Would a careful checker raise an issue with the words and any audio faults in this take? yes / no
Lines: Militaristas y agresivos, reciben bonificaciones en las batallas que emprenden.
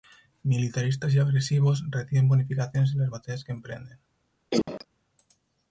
yes